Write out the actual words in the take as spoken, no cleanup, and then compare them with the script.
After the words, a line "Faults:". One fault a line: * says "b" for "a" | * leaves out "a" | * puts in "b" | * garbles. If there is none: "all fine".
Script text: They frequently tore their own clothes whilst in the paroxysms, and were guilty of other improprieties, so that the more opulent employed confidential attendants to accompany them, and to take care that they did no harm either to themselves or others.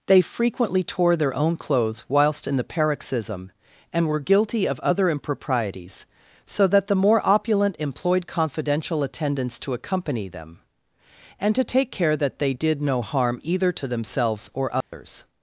They frequently tore their own clothes whilst in the paroxysm, and were guilty of other improprieties, so that the more opulent employed confidential attendants to accompany them, and to take care that they did no harm either to themselves or others.
Faults:
* says "paroxysm" for "paroxysms"